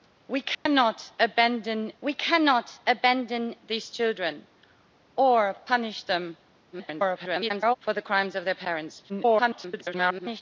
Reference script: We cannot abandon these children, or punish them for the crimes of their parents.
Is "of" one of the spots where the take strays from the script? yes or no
no